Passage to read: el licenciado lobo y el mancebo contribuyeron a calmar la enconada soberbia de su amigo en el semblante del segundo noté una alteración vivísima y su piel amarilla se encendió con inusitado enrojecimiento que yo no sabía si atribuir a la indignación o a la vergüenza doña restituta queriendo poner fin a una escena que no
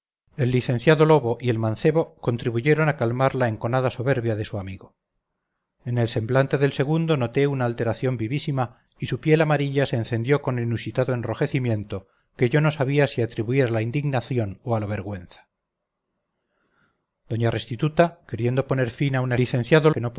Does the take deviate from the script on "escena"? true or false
true